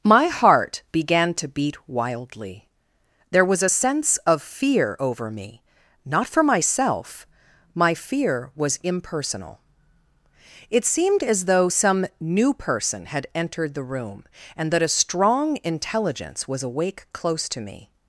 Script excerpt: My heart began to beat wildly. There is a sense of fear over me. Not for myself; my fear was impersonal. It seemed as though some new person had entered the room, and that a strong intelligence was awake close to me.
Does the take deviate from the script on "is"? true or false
true